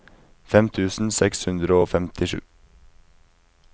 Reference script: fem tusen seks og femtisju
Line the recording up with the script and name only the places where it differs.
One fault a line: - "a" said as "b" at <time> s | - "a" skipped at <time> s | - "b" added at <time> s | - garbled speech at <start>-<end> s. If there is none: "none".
- "hundre" added at 1.5 s